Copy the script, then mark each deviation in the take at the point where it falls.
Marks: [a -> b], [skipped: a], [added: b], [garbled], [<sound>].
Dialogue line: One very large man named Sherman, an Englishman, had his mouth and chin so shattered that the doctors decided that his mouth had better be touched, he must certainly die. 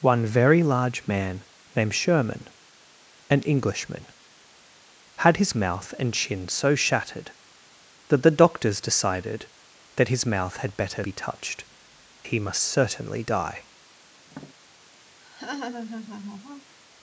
One very large man named Sherman, an Englishman, had his mouth and chin so shattered that the doctors decided that his mouth had better be touched, he must certainly die. [tap] [laugh]